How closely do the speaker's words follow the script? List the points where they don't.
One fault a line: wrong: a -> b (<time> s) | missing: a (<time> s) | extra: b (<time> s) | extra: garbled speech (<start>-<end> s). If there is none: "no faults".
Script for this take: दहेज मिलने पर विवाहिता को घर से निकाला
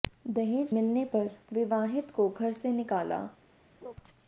no faults